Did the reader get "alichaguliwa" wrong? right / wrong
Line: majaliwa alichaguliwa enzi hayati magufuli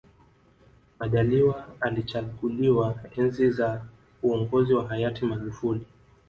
right